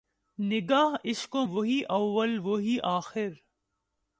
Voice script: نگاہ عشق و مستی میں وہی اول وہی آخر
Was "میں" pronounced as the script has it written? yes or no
no